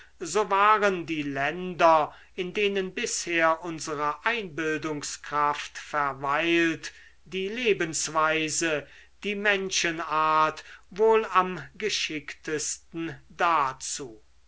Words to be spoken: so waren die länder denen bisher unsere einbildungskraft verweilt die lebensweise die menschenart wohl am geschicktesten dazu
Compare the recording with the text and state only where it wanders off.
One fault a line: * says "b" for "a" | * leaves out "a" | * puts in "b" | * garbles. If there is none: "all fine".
* puts in "in"